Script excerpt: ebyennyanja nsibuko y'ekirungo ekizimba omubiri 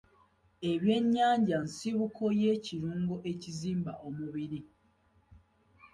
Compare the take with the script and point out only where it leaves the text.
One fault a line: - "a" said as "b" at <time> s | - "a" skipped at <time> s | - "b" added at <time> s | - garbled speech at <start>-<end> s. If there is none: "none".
none